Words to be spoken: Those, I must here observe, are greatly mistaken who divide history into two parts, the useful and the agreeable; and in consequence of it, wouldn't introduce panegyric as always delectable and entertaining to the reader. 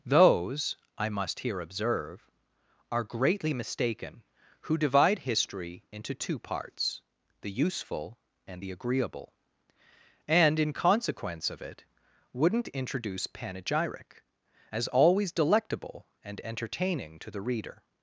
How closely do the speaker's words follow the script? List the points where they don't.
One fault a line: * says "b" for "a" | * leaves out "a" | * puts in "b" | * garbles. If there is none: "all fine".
all fine